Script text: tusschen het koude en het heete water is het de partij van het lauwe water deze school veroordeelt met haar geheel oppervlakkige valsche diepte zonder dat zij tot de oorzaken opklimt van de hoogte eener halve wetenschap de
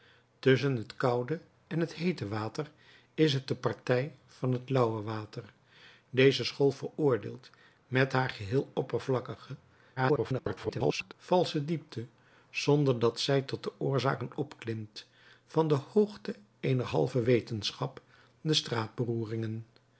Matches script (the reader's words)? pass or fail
fail